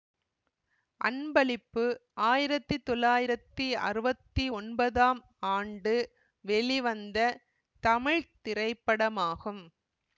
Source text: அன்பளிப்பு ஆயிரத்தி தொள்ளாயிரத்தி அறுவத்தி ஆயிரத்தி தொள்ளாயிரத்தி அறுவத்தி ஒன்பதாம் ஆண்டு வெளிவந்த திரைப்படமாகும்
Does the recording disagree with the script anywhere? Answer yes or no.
yes